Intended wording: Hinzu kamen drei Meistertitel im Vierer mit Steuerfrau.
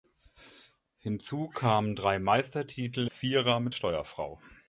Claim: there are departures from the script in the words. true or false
true